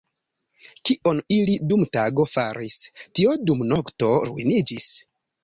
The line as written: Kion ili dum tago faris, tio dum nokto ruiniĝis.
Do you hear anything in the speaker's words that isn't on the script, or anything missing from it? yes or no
no